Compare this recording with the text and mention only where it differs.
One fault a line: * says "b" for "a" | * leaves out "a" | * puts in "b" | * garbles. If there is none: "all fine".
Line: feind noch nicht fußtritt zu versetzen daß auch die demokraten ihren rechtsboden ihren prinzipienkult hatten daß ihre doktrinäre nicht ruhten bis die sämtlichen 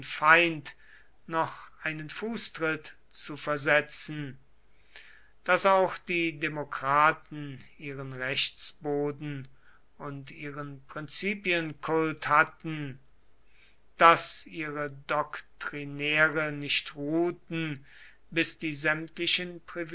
* says "einen" for "nicht"
* puts in "und"